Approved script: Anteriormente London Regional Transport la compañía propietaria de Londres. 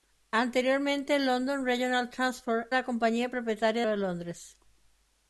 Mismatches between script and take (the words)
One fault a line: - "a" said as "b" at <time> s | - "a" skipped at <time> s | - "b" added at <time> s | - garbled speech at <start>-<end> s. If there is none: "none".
none